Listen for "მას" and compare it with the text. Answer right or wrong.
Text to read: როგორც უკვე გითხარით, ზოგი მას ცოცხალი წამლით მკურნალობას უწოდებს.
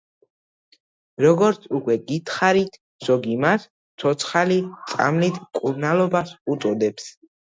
right